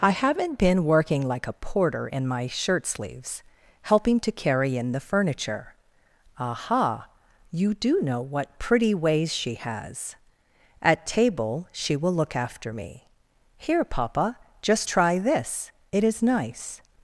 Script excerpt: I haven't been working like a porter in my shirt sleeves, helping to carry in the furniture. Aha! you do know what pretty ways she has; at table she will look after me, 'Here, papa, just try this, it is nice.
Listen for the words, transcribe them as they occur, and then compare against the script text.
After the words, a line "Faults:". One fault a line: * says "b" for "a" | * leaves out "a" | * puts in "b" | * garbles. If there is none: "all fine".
I haven't been working like a porter in my shirt sleeves, helping to carry in the furniture. Aha! you do know what pretty ways she has; at table she will look after me, 'Here, papa, just try this, it is nice.
Faults:
all fine